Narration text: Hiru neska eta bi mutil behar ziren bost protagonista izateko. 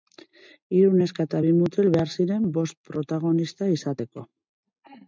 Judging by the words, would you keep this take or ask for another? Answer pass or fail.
pass